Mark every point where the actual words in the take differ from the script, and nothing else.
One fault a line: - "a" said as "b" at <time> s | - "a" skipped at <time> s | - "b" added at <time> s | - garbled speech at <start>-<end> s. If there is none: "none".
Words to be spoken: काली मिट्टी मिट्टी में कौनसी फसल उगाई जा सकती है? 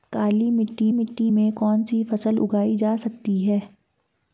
none